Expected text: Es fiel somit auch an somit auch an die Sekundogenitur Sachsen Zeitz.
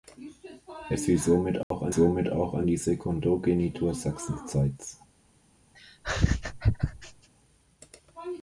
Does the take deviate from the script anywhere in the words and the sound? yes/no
yes